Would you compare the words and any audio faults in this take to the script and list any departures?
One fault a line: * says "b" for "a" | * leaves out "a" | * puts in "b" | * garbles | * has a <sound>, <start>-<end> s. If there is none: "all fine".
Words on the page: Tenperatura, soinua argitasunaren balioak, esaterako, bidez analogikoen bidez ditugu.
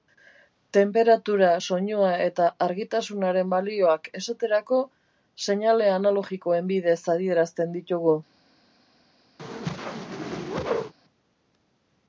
* puts in "eta"
* says "seinale" for "bidez"
* puts in "adierazten"
* has a whoosh, 9.4-10.9 s